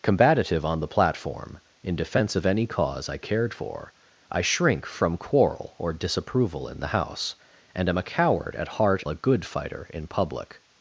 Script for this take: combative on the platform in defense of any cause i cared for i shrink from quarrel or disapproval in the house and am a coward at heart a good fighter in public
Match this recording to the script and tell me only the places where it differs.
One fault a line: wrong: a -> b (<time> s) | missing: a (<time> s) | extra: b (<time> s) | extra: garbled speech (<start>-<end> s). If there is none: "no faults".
no faults